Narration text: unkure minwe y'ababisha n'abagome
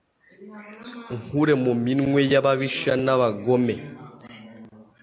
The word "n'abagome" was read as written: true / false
true